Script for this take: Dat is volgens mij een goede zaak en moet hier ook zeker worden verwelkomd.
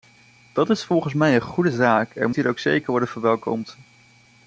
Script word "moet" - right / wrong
wrong